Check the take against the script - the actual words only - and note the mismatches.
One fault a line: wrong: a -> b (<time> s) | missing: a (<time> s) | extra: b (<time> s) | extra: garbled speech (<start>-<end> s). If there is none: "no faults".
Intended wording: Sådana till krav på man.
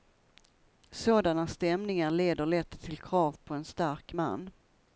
extra: stämningar leder lätt (1.5 s)
extra: en stark (3.5 s)